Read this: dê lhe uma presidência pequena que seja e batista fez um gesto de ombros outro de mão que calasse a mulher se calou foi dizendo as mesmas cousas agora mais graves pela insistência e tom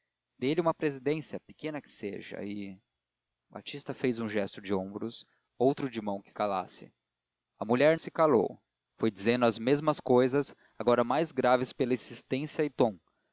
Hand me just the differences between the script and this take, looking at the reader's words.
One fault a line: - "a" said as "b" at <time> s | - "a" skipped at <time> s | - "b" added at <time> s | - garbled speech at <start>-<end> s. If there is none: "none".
none